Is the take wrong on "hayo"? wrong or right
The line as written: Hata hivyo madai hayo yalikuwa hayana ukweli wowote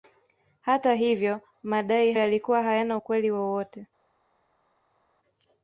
wrong